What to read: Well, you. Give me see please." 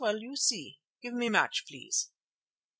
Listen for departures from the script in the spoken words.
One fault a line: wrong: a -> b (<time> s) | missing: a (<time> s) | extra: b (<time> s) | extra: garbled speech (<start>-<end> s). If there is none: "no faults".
extra: see (0.3 s)
wrong: see -> match (1.3 s)